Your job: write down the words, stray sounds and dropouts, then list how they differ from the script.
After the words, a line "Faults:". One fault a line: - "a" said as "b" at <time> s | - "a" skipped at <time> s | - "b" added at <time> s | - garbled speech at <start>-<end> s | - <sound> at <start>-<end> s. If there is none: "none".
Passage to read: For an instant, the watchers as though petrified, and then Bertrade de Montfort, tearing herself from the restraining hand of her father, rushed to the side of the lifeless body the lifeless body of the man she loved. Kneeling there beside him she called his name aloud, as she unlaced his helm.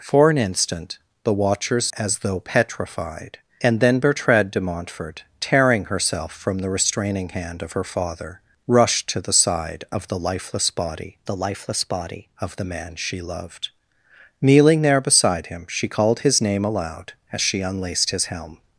For an instant, the watchers as though petrified, and then Bertrade de Montfort, tearing herself from the restraining hand of her father, rushed to the side of the lifeless body the lifeless body of the man she loved. Kneeling there beside him she called his name aloud, as she unlaced his helm.
Faults:
none